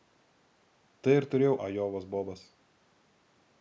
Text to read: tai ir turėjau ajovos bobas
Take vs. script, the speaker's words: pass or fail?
pass